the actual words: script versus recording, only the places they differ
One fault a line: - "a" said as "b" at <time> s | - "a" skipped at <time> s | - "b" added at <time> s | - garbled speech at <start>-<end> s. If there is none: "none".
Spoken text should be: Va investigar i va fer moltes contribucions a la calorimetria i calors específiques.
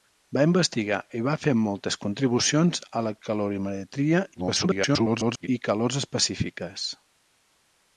- garbled speech at 4.3-5.5 s